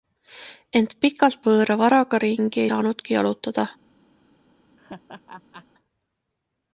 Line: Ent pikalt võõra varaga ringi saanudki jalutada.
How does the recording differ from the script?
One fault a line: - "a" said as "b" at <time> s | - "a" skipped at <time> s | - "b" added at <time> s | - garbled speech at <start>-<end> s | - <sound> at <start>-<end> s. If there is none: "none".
- laugh at 4.8-5.7 s